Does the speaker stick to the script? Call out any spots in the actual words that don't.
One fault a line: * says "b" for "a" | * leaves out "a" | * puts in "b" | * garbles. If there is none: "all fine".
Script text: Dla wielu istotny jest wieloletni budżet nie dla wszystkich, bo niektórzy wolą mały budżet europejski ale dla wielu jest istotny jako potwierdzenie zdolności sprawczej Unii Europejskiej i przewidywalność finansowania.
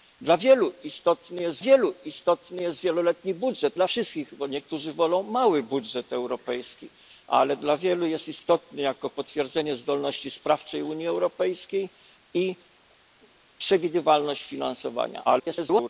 * puts in "wielu istotny jest"
* leaves out "nie"
* garbles